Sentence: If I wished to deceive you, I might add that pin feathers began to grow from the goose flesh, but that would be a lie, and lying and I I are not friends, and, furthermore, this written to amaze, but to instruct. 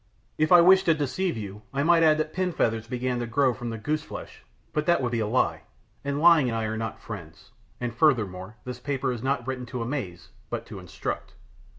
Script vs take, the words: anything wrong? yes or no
yes